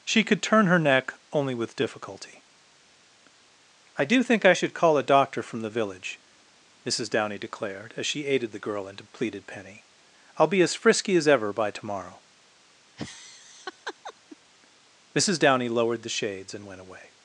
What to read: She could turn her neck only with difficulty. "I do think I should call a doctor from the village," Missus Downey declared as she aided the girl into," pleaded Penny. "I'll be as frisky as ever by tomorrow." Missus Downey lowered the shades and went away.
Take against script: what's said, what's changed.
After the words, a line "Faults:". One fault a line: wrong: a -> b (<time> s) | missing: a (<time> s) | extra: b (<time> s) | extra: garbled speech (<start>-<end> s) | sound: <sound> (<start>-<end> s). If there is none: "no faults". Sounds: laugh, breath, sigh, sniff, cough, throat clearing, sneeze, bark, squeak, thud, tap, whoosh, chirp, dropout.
She could turn her neck only with difficulty. "I do think I should call a doctor from the village," Missus Downey declared as she aided the girl into," pleaded Penny. "I'll be as frisky as ever by tomorrow." Missus Downey lowered the shades and went away.
Faults:
sound: laugh (13.0-14.4 s)